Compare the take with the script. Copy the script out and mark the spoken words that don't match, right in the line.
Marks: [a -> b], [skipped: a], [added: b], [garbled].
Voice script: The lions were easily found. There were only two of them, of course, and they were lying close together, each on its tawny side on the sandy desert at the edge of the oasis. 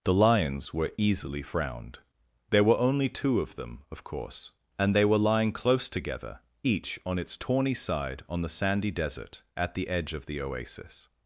The lions were easily [found. -> frowned] There were only two of them, of course, and they were lying close together, each on its tawny side on the sandy desert at the edge of the oasis.